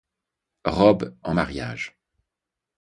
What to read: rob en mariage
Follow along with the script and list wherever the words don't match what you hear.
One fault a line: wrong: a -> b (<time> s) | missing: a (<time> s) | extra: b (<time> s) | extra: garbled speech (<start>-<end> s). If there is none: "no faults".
no faults